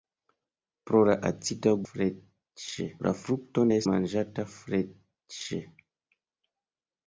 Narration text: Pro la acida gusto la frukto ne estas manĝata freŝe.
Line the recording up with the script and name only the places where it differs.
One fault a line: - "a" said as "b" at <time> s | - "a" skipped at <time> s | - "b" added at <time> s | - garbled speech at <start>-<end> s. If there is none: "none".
- "gusto" said as "freŝe" at 1.9 s
- "estas" skipped at 3.8 s